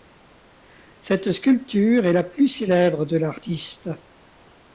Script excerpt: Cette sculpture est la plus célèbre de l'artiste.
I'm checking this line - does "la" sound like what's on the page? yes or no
yes